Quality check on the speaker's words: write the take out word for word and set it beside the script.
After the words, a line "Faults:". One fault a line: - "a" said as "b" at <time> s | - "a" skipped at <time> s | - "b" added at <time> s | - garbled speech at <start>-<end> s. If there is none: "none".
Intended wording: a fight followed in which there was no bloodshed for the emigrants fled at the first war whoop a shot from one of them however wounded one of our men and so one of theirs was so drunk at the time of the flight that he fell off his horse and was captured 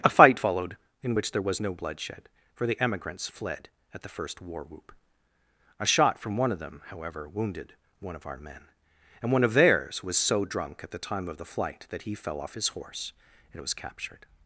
a fight followed in which there was no bloodshed for the emigrants fled at the first war whoop a shot from one of them however wounded one of our men and one of theirs was so drunk at the time of the flight that he fell off his horse and was captured
Faults:
- "so" skipped at 9.3 s